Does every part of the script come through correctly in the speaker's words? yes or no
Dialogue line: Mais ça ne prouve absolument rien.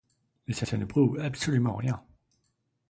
no